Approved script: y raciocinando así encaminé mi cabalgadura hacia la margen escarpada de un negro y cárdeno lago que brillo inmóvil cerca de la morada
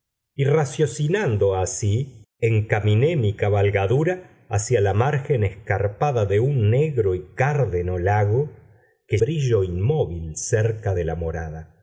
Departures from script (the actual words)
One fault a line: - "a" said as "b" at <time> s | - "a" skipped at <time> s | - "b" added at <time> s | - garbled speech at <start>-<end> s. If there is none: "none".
none